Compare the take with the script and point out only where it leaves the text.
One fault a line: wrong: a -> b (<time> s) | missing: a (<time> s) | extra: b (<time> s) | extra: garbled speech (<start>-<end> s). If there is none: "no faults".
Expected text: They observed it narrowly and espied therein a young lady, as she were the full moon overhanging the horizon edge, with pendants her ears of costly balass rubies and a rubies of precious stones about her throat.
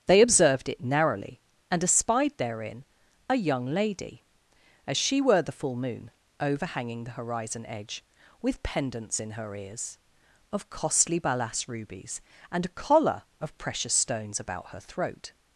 extra: in (9.2 s)
wrong: rubies -> collar (12.7 s)